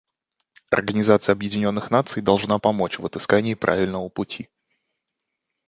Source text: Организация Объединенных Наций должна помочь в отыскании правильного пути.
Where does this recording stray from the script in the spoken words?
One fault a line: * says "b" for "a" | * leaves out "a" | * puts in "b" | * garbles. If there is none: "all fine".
all fine